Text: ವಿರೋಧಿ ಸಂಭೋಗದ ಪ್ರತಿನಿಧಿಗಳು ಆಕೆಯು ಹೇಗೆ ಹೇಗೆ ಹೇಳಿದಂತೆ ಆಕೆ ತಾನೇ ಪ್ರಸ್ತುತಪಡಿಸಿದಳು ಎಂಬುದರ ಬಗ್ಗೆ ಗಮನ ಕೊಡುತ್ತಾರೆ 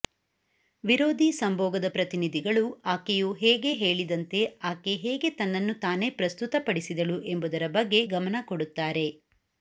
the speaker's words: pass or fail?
fail